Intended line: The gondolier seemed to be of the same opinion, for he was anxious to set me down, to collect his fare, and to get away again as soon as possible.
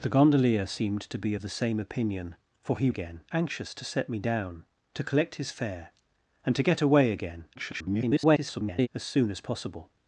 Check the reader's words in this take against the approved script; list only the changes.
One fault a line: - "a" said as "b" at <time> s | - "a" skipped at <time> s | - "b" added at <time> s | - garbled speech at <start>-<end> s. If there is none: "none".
- "was" said as "again" at 2.9 s
- garbled speech at 7.6-8.9 s